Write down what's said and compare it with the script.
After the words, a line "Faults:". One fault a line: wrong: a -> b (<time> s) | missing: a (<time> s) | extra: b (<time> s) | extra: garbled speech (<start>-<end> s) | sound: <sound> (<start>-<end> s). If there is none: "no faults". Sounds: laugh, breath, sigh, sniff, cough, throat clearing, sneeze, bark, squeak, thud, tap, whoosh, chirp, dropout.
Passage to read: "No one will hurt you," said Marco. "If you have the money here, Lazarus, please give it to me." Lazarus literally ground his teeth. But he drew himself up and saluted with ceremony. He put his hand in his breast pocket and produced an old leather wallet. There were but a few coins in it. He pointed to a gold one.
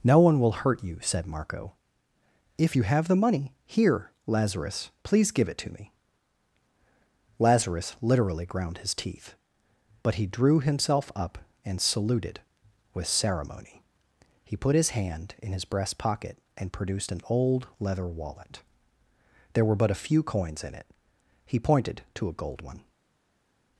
"No one will hurt you," said Marco. "If you have the money here, Lazarus, please give it to me." Lazarus literally ground his teeth. But he drew himself up and saluted with ceremony. He put his hand in his breast pocket and produced an old leather wallet. There were but a few coins in it. He pointed to a gold one.
Faults:
no faults